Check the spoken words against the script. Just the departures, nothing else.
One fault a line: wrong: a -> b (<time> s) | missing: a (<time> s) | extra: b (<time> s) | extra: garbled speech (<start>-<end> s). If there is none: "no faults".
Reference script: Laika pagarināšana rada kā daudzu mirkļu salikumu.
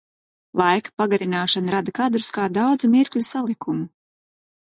extra: kadrus (2.0 s)